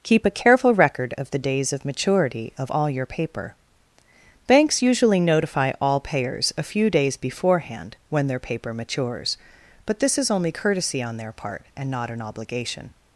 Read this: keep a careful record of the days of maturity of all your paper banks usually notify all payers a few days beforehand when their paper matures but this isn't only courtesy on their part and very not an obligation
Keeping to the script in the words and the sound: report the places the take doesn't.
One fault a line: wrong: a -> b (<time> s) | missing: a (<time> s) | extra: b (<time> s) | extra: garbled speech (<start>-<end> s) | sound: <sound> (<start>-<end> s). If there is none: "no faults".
wrong: isn't -> is (10.2 s)
missing: very (11.9 s)